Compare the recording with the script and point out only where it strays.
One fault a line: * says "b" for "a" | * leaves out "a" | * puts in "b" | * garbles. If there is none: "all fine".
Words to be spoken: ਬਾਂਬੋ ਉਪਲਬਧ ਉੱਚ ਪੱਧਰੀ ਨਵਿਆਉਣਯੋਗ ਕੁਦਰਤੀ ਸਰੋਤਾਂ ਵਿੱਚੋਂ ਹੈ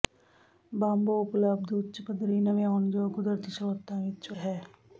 all fine